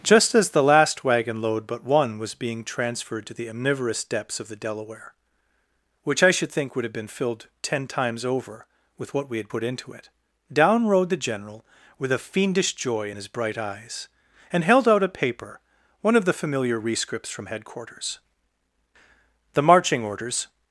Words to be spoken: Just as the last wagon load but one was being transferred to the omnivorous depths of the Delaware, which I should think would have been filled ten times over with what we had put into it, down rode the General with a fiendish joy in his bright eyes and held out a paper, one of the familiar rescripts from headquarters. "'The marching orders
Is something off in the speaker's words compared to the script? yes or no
no